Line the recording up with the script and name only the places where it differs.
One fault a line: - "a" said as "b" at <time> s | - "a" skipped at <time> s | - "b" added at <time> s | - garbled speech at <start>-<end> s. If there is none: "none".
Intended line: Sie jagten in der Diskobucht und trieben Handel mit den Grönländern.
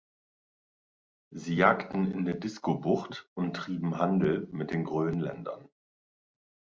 none